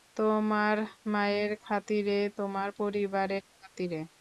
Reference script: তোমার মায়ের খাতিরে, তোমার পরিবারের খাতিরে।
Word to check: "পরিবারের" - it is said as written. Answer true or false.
true